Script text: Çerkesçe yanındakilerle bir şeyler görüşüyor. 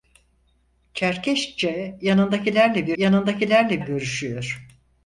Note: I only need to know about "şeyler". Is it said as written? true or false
false